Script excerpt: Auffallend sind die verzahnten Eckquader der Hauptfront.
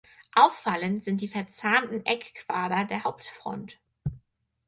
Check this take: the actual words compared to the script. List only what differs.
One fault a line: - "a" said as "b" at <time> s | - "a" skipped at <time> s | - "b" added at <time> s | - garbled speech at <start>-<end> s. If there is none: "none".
none